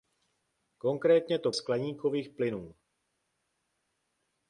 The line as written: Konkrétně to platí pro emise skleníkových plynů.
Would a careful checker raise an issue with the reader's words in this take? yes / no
yes